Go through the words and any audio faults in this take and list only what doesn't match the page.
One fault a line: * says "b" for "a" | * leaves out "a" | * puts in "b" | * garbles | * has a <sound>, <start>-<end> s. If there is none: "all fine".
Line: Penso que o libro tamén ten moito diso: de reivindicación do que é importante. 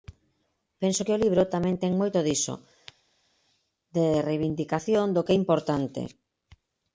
all fine